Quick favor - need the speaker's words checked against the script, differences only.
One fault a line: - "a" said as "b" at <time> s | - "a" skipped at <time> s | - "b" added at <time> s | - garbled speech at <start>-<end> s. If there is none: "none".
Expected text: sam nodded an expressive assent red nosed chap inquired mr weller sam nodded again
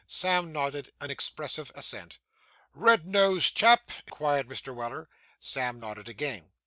none